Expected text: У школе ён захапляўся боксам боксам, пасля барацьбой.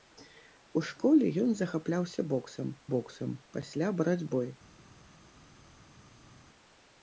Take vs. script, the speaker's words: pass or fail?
pass